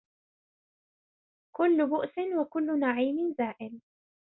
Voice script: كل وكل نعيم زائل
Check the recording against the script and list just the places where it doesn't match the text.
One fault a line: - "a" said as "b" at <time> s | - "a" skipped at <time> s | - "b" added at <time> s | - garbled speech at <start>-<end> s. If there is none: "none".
- "بؤس" added at 1.9 s